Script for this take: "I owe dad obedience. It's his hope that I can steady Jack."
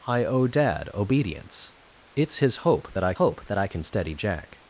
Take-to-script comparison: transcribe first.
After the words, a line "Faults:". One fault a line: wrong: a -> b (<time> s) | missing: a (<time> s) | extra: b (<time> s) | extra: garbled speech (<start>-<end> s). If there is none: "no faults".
"I owe dad obedience. It's his hope that I hope that I can steady Jack."
Faults:
extra: hope that I (3.1 s)